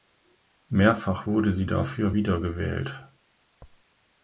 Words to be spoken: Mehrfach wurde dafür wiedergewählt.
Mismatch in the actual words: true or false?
true